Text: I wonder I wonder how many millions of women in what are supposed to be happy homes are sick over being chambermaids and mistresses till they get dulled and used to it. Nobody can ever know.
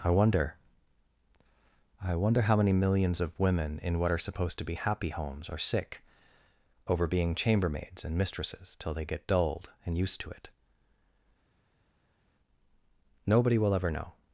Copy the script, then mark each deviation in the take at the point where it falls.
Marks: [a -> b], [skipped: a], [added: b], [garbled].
I wonder I wonder how many millions of women in what are supposed to be happy homes are sick over being chambermaids and mistresses till they get dulled and used to it. Nobody [can -> will] ever know.